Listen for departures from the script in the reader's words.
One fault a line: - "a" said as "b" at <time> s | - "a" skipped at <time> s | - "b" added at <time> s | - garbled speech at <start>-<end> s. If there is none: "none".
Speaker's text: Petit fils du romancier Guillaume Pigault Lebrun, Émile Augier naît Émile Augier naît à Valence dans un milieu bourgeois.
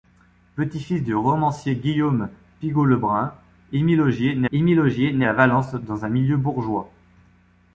none